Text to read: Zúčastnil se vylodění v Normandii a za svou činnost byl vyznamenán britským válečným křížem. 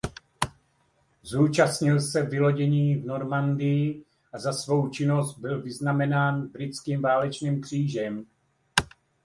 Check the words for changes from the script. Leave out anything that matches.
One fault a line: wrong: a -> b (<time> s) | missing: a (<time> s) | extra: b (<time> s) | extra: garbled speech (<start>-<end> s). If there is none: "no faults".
no faults